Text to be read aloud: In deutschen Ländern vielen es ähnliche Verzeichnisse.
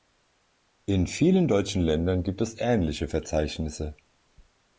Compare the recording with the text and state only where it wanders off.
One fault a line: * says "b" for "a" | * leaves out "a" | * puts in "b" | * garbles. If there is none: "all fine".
* puts in "vielen"
* says "gibt" for "vielen"